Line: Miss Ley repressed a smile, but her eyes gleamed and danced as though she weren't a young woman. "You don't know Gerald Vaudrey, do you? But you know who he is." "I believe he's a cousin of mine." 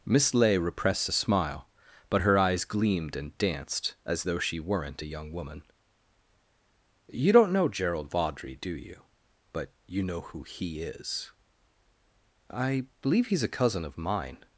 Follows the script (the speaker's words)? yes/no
yes